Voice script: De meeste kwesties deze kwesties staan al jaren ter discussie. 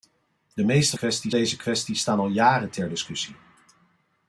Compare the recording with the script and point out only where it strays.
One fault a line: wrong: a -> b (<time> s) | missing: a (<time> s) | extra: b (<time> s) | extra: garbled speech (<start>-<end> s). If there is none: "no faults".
no faults